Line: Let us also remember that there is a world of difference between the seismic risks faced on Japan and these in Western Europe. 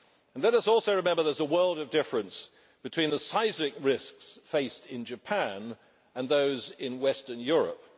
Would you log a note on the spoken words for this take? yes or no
yes